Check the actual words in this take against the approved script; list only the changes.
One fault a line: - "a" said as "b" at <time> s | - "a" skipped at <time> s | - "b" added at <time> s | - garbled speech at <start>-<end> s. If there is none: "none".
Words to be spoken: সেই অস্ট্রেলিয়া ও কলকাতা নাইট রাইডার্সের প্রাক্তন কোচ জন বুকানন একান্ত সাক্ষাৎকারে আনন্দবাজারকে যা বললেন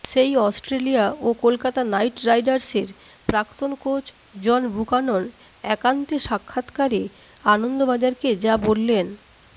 none